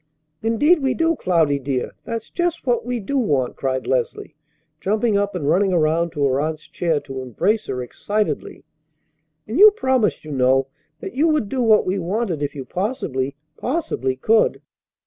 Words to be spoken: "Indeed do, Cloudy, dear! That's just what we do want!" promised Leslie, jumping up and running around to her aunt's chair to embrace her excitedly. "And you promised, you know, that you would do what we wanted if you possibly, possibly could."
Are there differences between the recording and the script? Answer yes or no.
yes